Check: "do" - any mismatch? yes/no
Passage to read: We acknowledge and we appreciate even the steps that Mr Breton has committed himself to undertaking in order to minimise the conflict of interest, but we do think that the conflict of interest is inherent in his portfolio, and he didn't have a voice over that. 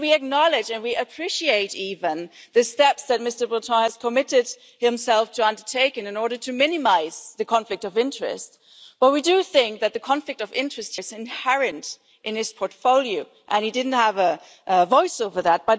no